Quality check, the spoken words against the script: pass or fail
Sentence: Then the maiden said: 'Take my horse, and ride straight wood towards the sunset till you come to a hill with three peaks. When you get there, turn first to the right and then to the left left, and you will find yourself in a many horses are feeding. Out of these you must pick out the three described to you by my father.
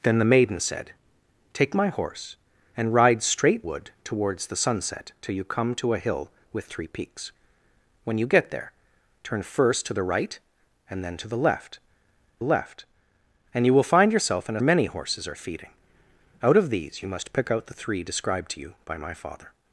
pass